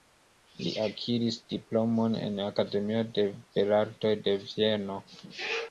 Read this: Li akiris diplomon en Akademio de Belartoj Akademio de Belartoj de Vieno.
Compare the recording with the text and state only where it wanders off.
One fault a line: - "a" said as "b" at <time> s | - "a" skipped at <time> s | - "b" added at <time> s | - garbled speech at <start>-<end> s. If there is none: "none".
- "Akademio de Belartoj" skipped at 4.2 s